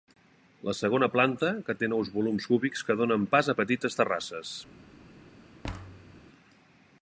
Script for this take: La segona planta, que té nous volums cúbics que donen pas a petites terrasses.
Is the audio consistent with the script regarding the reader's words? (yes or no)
yes